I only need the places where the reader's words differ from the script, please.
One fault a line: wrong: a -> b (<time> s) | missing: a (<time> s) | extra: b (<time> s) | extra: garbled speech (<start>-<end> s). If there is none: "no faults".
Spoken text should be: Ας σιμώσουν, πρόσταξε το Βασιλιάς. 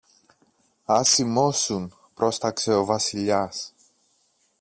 wrong: το -> ο (2.7 s)